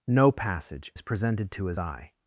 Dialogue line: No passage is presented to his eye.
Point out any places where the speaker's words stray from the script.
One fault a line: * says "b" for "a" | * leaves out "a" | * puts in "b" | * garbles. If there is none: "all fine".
all fine